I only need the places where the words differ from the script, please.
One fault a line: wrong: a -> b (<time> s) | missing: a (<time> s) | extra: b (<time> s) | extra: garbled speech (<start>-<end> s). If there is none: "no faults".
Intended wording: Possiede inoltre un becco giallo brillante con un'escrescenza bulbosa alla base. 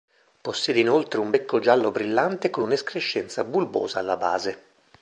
no faults